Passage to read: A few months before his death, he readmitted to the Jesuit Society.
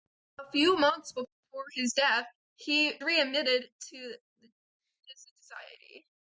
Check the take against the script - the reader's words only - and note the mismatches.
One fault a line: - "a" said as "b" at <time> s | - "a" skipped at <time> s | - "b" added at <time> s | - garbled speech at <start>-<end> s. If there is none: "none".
none